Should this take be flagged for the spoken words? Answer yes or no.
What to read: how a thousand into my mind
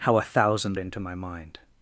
no